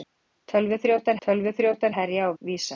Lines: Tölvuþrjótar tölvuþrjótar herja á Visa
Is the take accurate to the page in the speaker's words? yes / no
yes